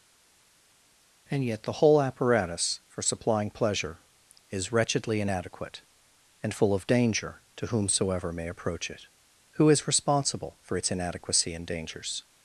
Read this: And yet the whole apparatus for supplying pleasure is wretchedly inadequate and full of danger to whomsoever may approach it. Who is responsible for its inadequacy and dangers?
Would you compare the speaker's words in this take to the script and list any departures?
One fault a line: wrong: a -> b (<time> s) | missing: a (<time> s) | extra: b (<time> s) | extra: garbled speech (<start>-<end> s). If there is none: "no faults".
no faults